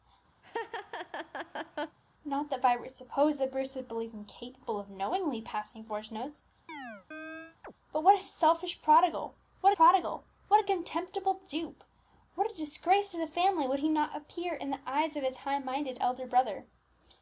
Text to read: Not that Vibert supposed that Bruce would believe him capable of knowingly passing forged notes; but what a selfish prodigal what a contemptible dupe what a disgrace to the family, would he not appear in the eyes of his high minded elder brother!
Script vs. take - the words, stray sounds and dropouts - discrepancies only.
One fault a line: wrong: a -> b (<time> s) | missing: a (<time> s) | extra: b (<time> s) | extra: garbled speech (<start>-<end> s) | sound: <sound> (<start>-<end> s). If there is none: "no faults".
sound: laugh (0.4-2.0 s)
sound: chirp (6.7-7.7 s)
extra: prodigal what (9.7 s)